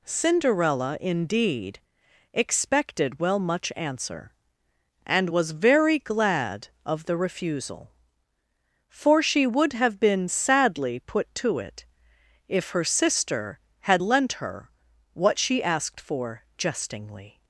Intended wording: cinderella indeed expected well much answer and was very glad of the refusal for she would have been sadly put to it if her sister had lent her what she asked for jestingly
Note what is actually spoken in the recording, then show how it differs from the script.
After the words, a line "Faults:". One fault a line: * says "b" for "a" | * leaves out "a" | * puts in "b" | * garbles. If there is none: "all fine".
cinderella indeed expected well much answer and was very glad of the refusal for she would have been sadly put to it if her sister had lent her what she asked for jestingly
Faults:
all fine